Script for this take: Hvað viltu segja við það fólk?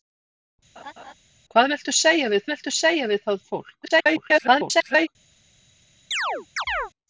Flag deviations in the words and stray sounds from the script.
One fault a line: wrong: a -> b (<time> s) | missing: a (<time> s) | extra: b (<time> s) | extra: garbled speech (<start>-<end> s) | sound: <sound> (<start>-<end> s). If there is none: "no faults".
sound: laugh (0.8-1.1 s)
extra: viltu segja við (2.5 s)
extra: garbled speech (3.8-5.1 s)
sound: chirp (6.1-6.9 s)